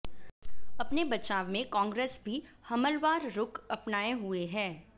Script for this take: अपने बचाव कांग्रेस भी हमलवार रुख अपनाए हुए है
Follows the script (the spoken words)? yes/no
no